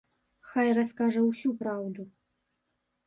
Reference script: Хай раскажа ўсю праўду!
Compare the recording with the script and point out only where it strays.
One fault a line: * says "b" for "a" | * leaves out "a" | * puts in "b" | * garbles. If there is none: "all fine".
all fine